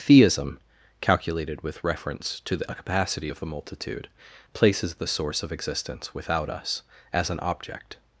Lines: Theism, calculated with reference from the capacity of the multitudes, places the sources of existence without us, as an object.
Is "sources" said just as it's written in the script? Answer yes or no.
no